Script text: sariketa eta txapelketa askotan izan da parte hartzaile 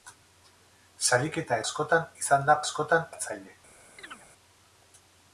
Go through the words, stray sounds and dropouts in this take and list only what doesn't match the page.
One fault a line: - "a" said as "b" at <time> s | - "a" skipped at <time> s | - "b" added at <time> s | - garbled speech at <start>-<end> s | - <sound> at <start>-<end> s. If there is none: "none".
- "eta txapelketa" skipped at 1.6 s
- "parte" said as "askotan" at 2.6 s
- chirp at 4.0-4.3 s